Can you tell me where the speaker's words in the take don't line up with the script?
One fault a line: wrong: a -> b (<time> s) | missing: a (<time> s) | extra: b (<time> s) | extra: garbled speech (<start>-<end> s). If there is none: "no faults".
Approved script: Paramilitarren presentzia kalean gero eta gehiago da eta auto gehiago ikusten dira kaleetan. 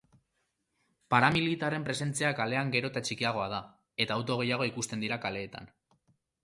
wrong: gehiago -> txikiagoa (3.1 s)